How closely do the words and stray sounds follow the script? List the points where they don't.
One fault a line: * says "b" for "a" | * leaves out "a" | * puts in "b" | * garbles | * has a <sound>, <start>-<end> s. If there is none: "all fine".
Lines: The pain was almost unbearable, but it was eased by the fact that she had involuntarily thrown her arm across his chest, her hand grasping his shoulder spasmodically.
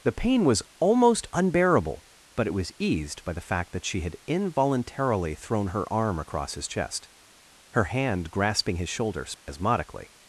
* has a dropout, 9.3-9.5 s